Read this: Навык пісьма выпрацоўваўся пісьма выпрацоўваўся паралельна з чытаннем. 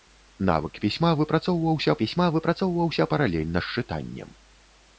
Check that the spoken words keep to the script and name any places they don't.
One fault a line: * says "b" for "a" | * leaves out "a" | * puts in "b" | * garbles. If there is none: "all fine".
all fine